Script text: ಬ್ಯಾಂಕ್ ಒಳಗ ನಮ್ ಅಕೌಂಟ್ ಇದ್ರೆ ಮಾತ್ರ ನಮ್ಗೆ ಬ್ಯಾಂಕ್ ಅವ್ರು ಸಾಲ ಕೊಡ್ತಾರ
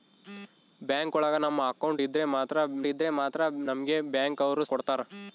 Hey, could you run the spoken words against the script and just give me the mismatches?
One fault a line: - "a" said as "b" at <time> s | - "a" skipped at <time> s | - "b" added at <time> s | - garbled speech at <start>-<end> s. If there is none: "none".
- "ಇದ್ರೆ ಮಾತ್ರ" added at 2.9 s
- "ಸಾಲ" skipped at 4.6 s